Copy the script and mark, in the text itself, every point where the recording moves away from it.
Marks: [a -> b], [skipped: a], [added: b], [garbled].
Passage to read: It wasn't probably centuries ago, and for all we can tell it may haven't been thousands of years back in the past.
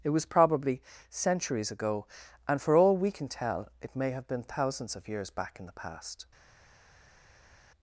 It [wasn't -> was] probably centuries ago, and for all we can tell it may [haven't -> have] been thousands of years back in the past.